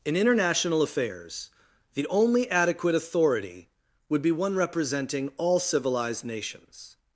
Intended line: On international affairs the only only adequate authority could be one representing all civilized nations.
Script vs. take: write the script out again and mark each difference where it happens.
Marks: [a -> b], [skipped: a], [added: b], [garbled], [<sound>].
[On -> In] international affairs the only [skipped: only] adequate authority [could -> would] be one representing all civilized nations.